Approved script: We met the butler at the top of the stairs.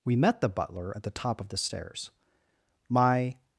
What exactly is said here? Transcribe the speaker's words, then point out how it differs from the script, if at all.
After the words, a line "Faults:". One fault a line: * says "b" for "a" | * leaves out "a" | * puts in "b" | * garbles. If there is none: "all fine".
We met the butler at the top of the stairs. My
Faults:
* puts in "My"